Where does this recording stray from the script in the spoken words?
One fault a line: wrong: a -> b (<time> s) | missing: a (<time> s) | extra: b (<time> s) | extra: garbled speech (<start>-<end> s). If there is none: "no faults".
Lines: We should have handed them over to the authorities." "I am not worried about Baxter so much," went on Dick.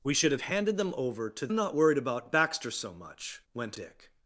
missing: the authorities I (1.5 s)
missing: on (3.8 s)